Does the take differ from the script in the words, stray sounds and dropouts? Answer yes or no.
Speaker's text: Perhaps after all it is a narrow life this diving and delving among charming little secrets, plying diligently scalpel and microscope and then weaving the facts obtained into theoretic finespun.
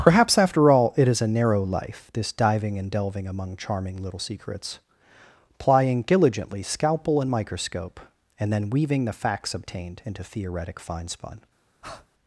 yes